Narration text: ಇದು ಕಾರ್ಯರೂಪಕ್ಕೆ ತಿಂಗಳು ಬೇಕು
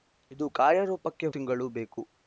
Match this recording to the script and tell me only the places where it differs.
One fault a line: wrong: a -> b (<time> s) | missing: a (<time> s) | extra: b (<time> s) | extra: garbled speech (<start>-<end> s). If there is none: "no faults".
no faults